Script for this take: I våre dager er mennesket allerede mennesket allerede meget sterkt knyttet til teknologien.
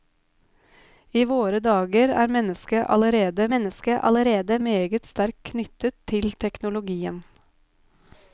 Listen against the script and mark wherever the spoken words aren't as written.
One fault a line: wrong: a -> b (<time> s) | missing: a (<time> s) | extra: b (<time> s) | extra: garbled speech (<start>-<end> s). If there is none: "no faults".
no faults